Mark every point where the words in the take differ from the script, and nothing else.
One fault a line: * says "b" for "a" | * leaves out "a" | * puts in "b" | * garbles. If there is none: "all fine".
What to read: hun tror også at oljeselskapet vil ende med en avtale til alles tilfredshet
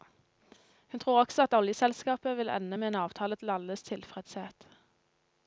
all fine